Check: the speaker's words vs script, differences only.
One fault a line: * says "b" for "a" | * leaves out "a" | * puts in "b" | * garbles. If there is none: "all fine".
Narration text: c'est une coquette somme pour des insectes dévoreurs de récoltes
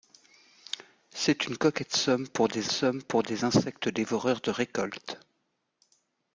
* puts in "somme pour des"